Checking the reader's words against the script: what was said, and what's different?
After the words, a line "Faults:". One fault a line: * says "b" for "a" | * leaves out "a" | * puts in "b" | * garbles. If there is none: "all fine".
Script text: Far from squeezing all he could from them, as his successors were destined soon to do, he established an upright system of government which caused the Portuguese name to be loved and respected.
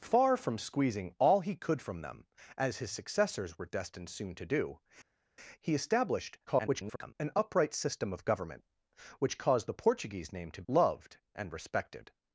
Far from squeezing all he could from them, as his successors were destined soon to do, he established [garbled] an upright system of government which caused the Portuguese name to loved and respected.
Faults:
* garbles
* leaves out "be"